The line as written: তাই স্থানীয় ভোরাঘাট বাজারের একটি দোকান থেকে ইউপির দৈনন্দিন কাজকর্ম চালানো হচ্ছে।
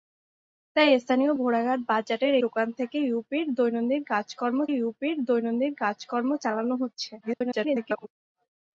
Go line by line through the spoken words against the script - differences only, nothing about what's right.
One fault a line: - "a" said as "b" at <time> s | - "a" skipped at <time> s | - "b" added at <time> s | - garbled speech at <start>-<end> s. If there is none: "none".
- "একটি" skipped at 2.3 s
- "ইউপির দৈনন্দিন কাজকর্ম" added at 4.7 s
- garbled speech at 7.2-8.1 s